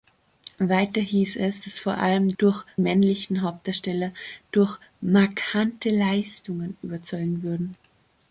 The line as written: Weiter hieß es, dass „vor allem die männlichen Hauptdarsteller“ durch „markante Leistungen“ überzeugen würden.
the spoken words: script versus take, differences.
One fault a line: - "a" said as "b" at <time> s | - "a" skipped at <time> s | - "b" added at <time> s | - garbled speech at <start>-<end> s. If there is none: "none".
- "die" said as "durch" at 2.4 s